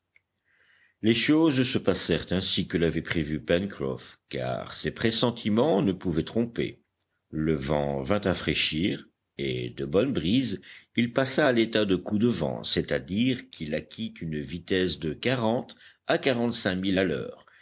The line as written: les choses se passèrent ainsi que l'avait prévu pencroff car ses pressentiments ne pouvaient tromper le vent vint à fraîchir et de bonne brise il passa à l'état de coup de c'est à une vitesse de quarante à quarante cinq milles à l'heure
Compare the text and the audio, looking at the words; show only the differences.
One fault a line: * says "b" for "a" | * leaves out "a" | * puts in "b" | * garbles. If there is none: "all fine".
* puts in "vent"
* puts in "dire qu'il acquit"